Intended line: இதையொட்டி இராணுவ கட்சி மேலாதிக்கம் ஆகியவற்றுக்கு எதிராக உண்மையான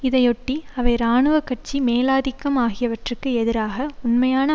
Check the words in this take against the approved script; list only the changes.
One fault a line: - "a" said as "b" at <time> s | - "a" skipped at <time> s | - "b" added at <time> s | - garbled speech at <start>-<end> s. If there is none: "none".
- "அவை" added at 0.8 s